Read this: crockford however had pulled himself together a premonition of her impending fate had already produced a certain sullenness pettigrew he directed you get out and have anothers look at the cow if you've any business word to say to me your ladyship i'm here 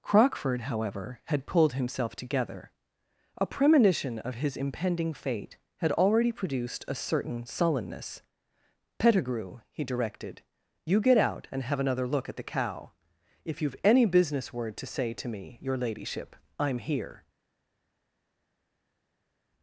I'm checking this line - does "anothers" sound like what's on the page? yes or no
no